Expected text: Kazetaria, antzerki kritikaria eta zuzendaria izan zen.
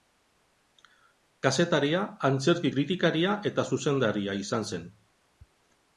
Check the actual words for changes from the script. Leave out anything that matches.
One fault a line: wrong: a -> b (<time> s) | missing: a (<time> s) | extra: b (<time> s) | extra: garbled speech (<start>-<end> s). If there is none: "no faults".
no faults